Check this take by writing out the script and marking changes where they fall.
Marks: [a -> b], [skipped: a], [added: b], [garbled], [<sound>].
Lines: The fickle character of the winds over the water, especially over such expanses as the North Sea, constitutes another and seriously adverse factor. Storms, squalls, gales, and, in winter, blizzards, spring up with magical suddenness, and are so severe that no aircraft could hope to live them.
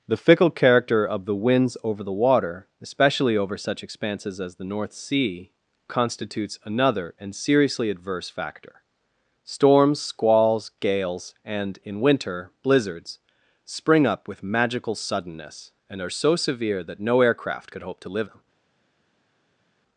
The fickle character of the winds over the water, especially over such expanses as the North Sea, constitutes another and seriously adverse factor. Storms, squalls, gales, and, in winter, blizzards, spring up with magical suddenness, and are so severe that no aircraft could hope to live them.